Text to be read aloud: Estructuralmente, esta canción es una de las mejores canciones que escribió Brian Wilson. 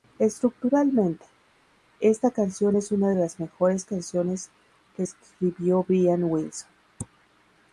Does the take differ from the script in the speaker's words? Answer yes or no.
no